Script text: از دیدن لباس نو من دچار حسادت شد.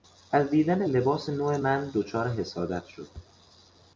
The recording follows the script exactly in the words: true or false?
true